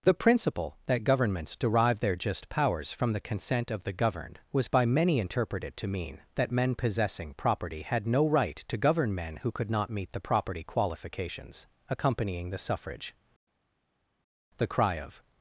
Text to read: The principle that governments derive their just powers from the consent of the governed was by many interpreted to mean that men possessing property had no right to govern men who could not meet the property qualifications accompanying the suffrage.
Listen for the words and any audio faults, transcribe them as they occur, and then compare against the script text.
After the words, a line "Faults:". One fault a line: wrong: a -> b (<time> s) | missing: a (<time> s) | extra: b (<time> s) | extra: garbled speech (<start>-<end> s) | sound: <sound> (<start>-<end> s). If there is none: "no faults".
The principle that governments derive their just powers from the consent of the governed was by many interpreted to mean that men possessing property had no right to govern men who could not meet the property qualifications accompanying the suffrage. The cry of
Faults:
extra: The cry of (14.6 s)